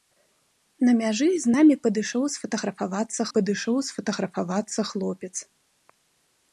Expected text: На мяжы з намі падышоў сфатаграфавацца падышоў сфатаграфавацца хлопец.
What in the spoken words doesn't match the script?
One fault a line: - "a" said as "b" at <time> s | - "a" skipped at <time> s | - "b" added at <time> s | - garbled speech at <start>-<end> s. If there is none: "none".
none